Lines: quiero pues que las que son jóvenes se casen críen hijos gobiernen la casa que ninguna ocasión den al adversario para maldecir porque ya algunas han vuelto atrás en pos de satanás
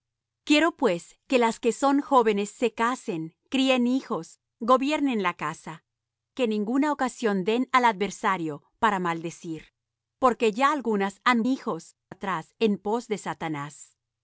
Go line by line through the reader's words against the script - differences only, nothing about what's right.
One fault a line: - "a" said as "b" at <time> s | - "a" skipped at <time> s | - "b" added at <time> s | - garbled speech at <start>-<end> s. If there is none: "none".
- "vuelto" said as "hijos" at 11.4 s